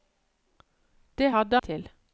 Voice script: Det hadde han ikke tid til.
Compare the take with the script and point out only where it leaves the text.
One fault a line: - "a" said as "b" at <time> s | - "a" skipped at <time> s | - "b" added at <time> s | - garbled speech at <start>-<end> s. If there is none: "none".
- "han ikke tid" skipped at 1.6 s